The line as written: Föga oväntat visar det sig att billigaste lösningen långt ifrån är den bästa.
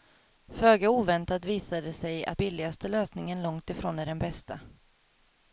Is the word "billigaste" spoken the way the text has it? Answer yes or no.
yes